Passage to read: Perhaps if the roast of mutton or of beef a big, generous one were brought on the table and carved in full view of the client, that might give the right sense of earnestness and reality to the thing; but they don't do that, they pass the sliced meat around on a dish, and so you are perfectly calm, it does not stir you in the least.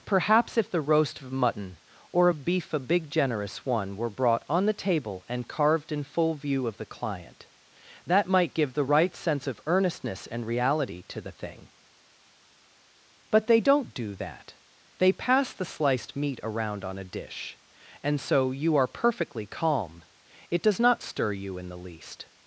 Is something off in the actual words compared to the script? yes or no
no